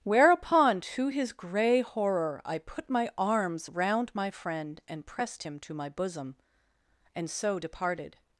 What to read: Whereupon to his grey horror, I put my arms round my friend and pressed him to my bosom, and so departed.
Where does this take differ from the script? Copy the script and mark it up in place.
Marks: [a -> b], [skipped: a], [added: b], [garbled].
Whereupon to his grey horror, I put my arms round my friend and pressed him to my bosom, and so departed.